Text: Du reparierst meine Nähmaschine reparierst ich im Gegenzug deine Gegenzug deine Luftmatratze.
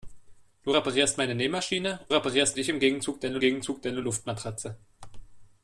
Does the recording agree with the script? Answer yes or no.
yes